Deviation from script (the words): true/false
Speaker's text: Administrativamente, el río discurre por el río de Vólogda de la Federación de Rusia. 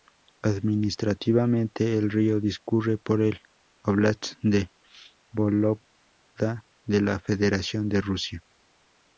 true